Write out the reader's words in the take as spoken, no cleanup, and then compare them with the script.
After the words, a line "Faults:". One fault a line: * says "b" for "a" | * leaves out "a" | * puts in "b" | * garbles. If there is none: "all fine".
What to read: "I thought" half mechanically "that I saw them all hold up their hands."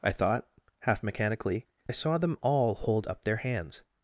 "I thought" half mechanically "I saw them all hold up their hands."
Faults:
* leaves out "that"